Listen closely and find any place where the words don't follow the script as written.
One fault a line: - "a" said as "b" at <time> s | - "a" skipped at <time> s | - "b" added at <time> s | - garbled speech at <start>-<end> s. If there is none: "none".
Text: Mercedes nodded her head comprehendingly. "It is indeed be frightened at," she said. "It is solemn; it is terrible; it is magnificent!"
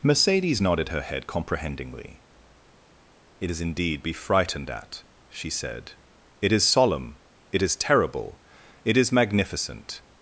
none